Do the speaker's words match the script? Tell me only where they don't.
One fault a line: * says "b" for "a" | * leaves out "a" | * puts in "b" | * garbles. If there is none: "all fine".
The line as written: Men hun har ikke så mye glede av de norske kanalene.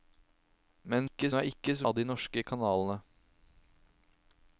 * says "ikke" for "hun"
* leaves out "mye glede"